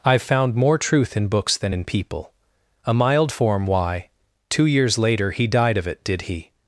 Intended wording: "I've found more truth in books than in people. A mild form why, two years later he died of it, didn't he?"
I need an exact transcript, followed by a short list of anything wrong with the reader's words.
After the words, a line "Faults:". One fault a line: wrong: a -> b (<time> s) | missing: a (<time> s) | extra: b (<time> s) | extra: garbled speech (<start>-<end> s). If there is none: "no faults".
"I've found more truth in books than in people. A mild form why, two years later he died of it, did he?"
Faults:
wrong: didn't -> did (6.0 s)